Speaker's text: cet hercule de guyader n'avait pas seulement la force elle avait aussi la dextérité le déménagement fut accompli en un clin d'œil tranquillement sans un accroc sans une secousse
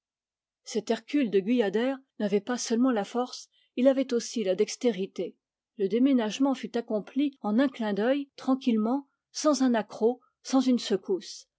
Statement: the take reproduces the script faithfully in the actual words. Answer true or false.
false